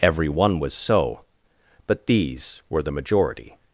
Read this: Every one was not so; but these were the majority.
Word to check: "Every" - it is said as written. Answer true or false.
true